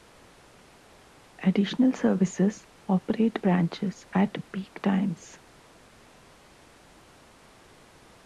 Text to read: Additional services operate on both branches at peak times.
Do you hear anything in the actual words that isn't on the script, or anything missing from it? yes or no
yes